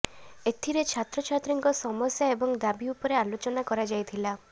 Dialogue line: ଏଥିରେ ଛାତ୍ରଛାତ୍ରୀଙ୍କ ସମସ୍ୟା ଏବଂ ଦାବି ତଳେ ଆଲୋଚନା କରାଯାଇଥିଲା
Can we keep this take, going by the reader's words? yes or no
no